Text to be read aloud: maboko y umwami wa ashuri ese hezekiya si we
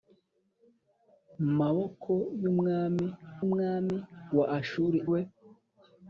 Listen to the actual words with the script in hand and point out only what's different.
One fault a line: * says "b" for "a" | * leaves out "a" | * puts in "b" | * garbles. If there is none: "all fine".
* puts in "umwami"
* leaves out "ese hezekiya si"